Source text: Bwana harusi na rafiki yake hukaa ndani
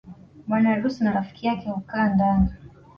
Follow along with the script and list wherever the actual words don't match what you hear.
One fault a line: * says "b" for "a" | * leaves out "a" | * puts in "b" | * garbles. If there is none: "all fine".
all fine